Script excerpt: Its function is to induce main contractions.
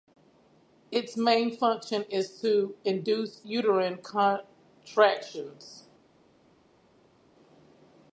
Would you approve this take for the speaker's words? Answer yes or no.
no